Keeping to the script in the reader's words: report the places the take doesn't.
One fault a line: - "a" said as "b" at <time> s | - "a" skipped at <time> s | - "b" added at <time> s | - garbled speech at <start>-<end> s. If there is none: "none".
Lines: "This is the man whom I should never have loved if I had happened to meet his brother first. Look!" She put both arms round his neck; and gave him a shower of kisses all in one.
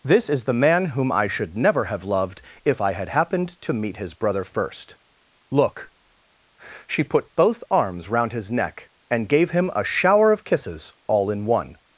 none